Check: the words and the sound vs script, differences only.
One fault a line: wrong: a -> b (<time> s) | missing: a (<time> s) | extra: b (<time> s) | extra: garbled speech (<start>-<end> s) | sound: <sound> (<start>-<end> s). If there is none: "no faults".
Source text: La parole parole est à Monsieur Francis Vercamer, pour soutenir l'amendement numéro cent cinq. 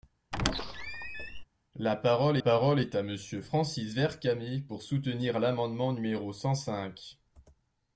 sound: squeak (0.3-1.4 s)